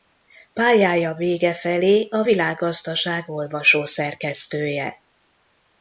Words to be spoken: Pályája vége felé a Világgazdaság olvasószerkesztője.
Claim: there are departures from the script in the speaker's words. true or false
false